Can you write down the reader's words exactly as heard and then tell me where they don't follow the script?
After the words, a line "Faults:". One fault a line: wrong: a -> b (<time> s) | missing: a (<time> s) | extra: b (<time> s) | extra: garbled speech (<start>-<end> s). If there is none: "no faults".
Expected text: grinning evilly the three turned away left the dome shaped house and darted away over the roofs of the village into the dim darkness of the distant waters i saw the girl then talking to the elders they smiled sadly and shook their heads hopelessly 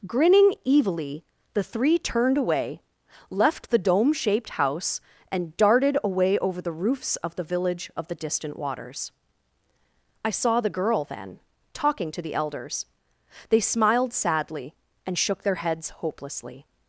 grinning evilly the three turned away left the dome shaped house and darted away over the roofs of the village of the distant waters i saw the girl then talking to the elders they smiled sadly and shook their heads hopelessly
Faults:
missing: into the dim darkness (7.9 s)